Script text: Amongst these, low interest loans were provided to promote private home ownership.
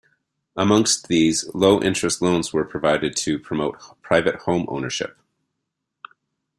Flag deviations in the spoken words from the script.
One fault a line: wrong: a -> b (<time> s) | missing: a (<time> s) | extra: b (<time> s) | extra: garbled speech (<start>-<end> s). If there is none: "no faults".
no faults